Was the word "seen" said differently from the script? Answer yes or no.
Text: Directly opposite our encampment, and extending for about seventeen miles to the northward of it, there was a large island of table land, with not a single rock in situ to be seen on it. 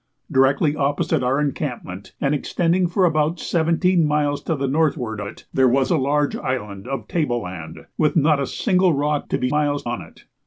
yes